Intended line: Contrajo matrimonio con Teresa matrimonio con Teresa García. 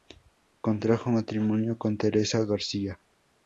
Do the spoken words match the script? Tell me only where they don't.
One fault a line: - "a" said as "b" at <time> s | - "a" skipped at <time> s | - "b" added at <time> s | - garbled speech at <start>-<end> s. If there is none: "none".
- "matrimonio con Teresa" skipped at 2.4 s